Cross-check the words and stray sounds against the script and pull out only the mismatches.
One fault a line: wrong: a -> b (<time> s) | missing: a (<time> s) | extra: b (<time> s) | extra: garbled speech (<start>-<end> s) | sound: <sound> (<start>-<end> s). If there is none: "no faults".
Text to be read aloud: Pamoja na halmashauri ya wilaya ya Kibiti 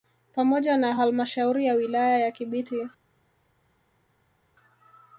no faults